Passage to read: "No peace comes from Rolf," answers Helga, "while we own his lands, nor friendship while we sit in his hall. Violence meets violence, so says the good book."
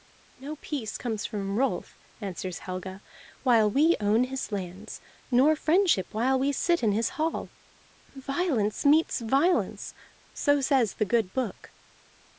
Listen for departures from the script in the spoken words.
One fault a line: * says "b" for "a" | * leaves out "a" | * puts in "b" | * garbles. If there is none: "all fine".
all fine